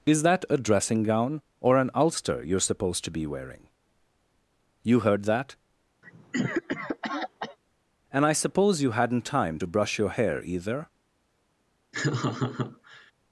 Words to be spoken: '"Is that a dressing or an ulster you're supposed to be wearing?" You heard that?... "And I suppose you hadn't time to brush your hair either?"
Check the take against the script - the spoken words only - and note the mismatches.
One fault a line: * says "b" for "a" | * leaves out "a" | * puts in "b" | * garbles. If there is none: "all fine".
* puts in "gown"